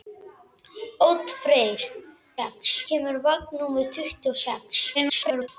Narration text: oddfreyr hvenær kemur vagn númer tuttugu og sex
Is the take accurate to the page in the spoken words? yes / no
no